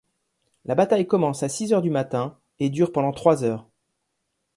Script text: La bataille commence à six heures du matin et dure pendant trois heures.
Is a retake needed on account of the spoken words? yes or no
no